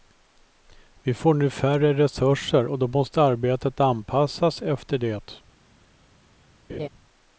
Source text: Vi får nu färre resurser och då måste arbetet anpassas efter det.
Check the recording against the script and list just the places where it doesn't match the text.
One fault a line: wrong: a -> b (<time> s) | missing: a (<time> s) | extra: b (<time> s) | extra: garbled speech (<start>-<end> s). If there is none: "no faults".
no faults